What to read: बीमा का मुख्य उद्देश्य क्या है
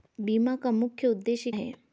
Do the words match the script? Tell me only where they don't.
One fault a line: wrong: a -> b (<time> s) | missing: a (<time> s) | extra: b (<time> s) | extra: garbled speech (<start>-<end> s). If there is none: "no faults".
missing: क्या (1.5 s)